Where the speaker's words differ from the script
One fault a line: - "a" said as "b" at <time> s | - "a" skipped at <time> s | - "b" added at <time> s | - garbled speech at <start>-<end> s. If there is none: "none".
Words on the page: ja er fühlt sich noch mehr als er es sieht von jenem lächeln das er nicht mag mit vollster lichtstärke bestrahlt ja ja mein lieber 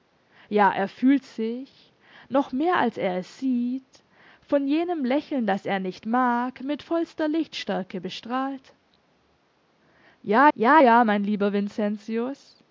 - "ja" added at 10.8 s